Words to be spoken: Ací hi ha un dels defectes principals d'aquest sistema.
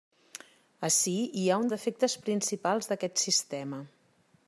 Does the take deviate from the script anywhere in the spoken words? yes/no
yes